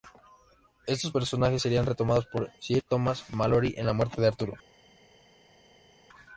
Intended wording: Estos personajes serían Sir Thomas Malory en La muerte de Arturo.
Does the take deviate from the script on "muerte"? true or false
false